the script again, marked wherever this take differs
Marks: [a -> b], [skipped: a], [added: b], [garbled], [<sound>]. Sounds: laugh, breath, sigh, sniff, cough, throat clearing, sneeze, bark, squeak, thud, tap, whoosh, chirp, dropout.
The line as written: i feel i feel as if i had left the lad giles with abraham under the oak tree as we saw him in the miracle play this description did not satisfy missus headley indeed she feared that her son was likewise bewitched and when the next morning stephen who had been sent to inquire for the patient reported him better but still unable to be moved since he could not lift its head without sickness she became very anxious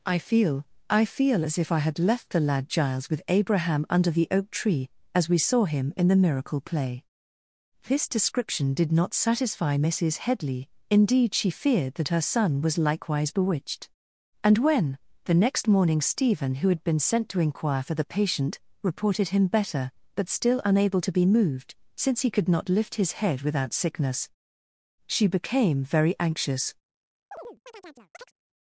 i feel i feel as if i had left the lad giles with abraham under the oak tree as we saw him in the miracle play this description did not satisfy missus headley indeed she feared that her son was likewise bewitched and when the next morning stephen who had been sent to inquire for the patient reported him better but still unable to be moved since he could not lift [its -> his] head without sickness she became very anxious [chirp]